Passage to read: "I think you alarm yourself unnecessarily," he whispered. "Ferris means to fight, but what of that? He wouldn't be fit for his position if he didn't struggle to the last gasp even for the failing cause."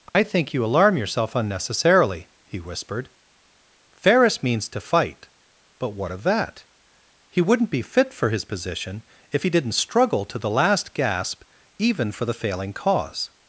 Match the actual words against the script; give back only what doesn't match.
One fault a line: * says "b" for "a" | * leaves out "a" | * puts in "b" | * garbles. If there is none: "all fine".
all fine